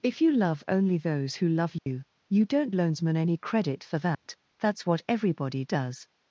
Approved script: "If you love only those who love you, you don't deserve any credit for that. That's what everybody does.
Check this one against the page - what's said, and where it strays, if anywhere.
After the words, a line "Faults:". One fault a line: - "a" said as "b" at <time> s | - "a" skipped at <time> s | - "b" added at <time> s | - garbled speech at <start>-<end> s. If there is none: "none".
"If you love only those who love you, you don't loansman any credit for that. That's what everybody does.
Faults:
- "deserve" said as "loansman" at 2.7 s